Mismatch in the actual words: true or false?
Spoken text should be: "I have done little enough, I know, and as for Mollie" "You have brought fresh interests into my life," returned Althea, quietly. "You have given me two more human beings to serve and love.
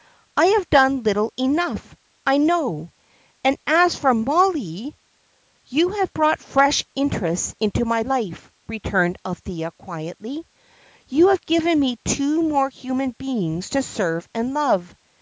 false